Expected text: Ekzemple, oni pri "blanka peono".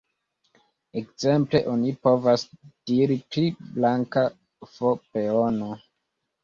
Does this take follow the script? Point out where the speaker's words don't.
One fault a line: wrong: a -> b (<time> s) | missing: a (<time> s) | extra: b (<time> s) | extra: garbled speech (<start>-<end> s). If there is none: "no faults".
extra: povas diri (2.1 s)
extra: f (4.7 s)